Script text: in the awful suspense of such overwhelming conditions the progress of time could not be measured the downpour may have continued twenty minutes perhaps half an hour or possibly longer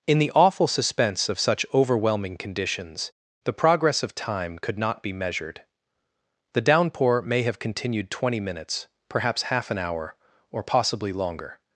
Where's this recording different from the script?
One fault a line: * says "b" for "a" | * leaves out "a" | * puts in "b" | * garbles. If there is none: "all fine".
all fine